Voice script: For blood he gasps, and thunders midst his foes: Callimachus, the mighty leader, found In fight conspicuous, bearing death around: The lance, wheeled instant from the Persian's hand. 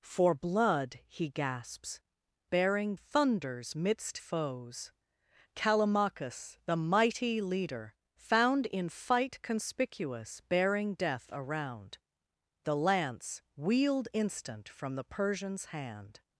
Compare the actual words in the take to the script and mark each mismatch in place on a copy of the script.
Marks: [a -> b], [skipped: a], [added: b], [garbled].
For blood he gasps, [and -> bearing] thunders midst [skipped: his] foes: Callimachus, the mighty leader, found In fight conspicuous, bearing death around: The lance, wheeled instant from the Persian's hand.